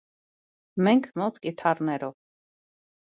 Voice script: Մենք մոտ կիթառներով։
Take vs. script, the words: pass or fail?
pass